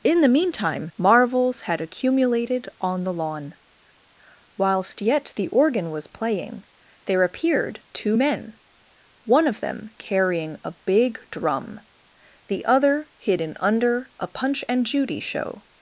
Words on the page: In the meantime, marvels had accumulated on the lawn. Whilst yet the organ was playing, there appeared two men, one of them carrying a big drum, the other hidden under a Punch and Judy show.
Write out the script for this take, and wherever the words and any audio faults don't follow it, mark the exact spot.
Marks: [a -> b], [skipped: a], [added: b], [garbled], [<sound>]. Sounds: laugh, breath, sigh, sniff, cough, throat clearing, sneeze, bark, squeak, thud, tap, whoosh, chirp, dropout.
In the meantime, marvels had accumulated on the lawn. Whilst yet the organ was playing, there appeared two men, one of them carrying a big drum, the other hidden under a Punch and Judy show.